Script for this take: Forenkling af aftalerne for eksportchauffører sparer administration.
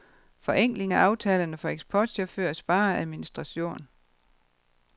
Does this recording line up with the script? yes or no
yes